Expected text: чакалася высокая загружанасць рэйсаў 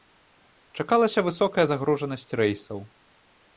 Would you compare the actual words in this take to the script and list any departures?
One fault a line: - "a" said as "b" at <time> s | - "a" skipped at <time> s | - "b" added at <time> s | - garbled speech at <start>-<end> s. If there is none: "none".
none